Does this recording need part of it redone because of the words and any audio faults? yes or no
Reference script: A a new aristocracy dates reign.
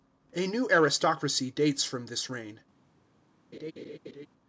yes